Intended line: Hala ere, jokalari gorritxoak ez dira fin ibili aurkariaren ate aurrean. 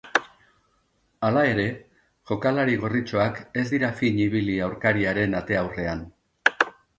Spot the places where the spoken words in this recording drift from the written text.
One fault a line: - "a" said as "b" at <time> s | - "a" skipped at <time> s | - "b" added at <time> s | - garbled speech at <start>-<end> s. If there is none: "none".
none